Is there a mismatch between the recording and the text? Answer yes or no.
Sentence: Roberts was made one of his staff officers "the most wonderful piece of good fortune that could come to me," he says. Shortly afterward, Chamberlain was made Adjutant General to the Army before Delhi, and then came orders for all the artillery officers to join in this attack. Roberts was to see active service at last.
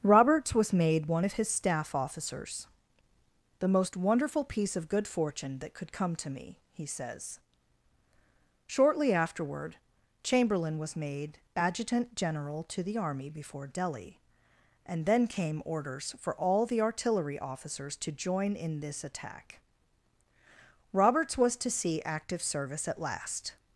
no